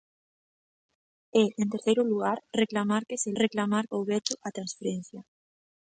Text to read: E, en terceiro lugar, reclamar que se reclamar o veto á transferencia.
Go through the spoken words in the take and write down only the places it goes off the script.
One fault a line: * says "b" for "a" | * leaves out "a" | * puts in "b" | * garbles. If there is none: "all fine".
all fine